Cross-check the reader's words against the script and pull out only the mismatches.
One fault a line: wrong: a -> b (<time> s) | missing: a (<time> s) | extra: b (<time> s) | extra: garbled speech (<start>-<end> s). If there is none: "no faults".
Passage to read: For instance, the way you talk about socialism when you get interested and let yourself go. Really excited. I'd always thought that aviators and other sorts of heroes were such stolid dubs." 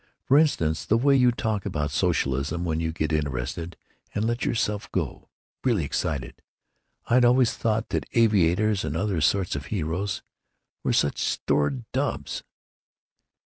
no faults